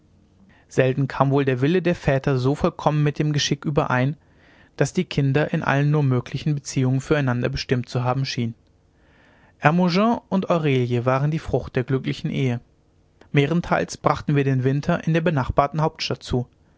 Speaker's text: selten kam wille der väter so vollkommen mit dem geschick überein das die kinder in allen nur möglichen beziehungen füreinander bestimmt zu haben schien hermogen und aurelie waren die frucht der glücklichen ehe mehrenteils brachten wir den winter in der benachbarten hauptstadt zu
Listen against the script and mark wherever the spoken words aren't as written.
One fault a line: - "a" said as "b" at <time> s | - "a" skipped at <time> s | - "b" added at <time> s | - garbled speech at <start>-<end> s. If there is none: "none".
- "wohl der" added at 1.3 s